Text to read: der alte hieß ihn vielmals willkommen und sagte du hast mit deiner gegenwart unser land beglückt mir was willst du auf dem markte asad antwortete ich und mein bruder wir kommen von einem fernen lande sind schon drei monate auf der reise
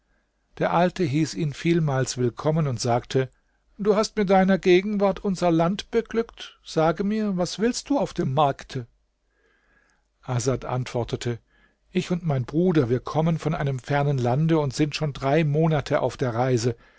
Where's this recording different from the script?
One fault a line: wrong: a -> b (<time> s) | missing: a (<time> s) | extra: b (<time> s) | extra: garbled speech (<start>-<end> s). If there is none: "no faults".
extra: sage (6.6 s)
extra: und (14.6 s)